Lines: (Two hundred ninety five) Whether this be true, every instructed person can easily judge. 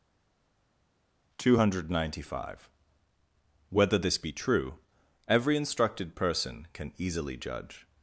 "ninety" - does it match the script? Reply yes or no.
yes